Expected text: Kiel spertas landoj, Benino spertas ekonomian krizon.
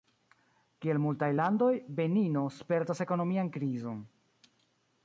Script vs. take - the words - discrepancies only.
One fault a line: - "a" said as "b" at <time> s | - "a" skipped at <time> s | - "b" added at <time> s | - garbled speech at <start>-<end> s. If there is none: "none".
- "spertas" said as "multaj" at 1.0 s